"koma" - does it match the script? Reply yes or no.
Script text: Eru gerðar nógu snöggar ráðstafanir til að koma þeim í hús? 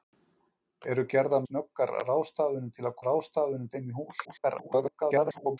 no